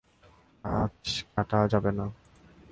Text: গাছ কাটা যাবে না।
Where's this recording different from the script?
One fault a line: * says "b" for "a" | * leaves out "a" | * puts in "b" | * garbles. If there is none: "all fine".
all fine